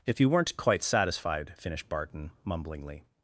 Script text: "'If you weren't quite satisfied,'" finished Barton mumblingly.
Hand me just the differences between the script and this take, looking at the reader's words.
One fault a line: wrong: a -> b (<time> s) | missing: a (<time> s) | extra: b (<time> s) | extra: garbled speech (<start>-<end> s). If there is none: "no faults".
no faults